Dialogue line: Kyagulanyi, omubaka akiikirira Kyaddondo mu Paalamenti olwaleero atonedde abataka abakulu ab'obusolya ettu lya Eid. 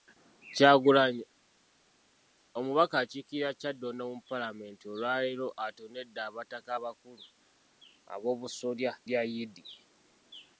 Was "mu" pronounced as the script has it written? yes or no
yes